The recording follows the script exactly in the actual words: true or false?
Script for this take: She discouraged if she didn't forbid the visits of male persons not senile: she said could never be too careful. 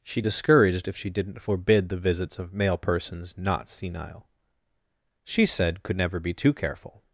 true